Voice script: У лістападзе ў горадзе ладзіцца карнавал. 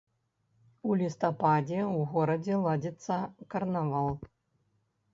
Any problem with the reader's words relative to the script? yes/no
no